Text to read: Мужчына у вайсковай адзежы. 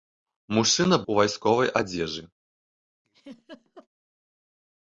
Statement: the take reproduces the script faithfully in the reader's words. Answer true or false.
true